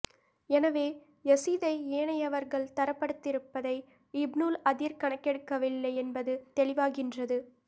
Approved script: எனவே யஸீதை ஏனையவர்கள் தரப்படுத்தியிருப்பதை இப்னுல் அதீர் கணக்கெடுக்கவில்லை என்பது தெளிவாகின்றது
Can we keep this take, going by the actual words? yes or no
yes